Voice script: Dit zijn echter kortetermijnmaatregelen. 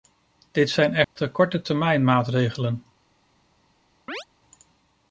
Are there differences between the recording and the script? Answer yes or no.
no